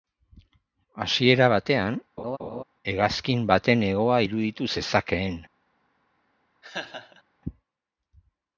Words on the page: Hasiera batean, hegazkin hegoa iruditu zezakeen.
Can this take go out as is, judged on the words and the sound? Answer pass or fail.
fail